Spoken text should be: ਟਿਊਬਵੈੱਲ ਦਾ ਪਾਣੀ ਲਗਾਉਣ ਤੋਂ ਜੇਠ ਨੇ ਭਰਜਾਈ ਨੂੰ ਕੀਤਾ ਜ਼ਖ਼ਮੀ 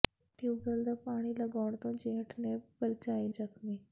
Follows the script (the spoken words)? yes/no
no